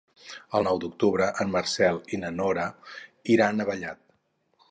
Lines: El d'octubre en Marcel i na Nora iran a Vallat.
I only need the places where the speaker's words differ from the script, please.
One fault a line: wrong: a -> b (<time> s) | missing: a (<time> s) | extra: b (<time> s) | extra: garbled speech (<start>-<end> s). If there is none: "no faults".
extra: nou (0.7 s)